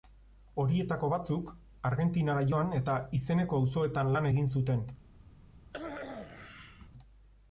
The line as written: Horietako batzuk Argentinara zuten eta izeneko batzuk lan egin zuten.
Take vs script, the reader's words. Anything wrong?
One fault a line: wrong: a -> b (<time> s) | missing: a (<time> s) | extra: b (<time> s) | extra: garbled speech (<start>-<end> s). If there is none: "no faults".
wrong: zuten -> joan (2.5 s)
wrong: batzuk -> auzoetan (3.6 s)